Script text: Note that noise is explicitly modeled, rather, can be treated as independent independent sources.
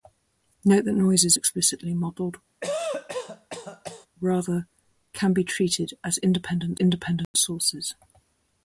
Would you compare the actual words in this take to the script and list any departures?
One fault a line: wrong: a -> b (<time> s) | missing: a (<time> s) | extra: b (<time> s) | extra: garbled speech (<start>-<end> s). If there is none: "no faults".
no faults